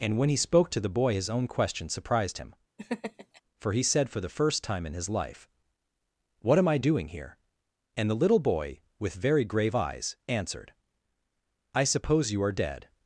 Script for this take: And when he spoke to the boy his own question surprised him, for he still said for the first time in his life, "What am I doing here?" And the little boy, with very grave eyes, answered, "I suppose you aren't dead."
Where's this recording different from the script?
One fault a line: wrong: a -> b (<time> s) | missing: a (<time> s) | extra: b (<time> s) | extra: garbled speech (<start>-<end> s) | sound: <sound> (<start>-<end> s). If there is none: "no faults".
sound: laugh (2.8-3.4 s)
missing: still (3.8 s)
wrong: aren't -> are (12.4 s)